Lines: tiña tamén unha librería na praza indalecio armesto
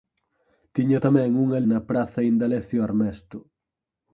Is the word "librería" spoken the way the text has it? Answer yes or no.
no